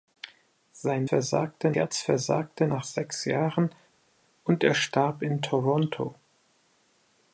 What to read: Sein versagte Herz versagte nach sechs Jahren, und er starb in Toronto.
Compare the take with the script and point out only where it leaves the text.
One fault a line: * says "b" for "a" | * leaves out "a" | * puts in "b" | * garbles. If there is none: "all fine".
all fine